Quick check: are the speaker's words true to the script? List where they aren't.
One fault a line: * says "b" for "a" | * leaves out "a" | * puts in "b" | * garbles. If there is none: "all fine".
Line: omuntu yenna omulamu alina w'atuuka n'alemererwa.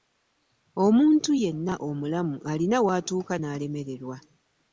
all fine